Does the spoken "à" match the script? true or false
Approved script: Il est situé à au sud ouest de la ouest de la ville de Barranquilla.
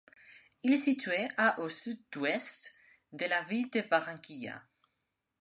true